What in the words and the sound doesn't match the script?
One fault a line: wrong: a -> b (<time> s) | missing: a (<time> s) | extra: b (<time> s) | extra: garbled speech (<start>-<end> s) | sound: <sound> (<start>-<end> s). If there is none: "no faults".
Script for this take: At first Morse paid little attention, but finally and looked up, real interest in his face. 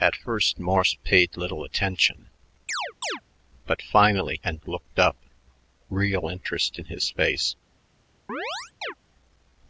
sound: chirp (2.7-3.2 s)
sound: chirp (8.3-8.9 s)